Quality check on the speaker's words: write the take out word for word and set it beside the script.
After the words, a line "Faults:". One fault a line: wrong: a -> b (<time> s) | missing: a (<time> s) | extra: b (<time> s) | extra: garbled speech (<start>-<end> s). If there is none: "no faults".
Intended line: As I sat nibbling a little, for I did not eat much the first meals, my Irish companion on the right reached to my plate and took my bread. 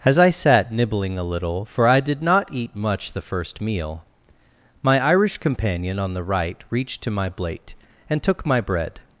As I sat nibbling a little, for I did not eat much the first meal, my Irish companion on the right reached to my plate and took my bread.
Faults:
wrong: meals -> meal (3.6 s)